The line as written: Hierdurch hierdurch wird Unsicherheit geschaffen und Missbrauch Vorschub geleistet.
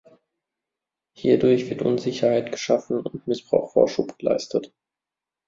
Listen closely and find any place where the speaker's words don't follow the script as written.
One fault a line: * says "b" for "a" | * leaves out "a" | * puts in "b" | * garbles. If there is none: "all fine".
* leaves out "hierdurch"